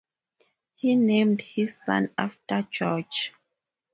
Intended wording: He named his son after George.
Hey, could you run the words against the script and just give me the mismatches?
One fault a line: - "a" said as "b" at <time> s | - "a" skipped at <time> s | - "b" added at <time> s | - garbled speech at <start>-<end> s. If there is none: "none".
none